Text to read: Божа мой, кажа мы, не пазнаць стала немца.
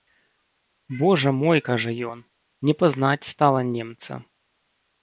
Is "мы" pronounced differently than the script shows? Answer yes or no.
yes